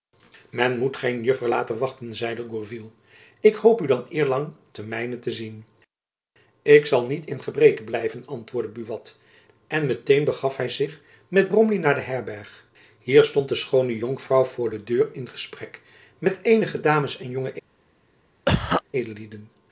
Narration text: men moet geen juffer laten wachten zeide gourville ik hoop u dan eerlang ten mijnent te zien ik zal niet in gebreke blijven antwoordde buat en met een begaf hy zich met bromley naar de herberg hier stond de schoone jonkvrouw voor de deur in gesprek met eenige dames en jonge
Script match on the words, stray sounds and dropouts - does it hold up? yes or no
no